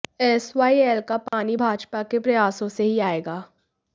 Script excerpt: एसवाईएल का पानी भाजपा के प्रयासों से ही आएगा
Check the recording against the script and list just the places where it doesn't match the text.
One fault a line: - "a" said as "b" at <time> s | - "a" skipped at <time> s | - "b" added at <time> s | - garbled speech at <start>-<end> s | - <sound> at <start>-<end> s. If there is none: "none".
- dropout at 1.3-1.3 s